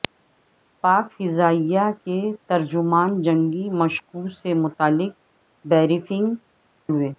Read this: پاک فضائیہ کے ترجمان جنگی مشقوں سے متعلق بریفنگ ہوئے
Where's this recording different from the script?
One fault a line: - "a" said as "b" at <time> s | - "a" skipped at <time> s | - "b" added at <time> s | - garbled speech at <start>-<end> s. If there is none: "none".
none